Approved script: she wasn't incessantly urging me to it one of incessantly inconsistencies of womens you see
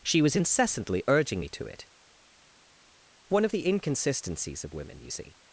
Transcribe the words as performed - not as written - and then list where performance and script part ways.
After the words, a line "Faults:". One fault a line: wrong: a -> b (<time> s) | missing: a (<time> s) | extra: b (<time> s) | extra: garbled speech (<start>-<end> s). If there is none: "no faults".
she was incessantly urging me to it one of the inconsistencies of women you see
Faults:
wrong: wasn't -> was (0.2 s)
wrong: incessantly -> the (3.5 s)
wrong: womens -> women (4.7 s)